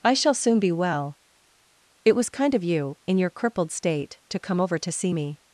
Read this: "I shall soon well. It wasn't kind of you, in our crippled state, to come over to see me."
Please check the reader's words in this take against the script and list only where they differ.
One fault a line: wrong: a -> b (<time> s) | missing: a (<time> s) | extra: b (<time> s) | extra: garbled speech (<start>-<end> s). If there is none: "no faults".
extra: be (0.6 s)
wrong: wasn't -> was (2.1 s)
wrong: our -> your (3.2 s)